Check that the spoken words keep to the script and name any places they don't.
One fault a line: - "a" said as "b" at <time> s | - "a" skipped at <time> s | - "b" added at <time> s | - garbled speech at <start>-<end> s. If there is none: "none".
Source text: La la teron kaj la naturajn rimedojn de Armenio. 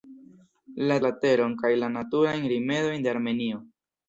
none